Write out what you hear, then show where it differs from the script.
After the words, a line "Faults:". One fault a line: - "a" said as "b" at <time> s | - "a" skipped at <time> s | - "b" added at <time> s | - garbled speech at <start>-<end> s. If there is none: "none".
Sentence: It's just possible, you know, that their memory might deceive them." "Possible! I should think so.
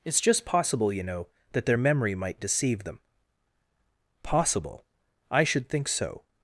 It's just possible, you know, that their memory might deceive them." "Possible! I should think so.
Faults:
none